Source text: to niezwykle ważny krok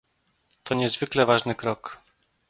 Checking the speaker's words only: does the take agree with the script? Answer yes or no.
yes